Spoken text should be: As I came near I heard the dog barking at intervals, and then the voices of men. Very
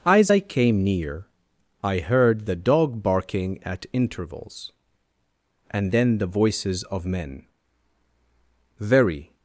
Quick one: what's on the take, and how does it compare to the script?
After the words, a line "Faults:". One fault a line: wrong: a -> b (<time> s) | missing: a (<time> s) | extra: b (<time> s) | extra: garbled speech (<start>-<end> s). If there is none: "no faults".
As I came near I heard the dog barking at intervals, and then the voices of men. Very
Faults:
no faults